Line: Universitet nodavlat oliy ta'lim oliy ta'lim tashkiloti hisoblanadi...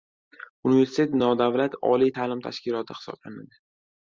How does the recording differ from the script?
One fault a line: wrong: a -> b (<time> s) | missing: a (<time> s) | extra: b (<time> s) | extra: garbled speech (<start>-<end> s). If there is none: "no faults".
missing: oliy ta'lim (2.4 s)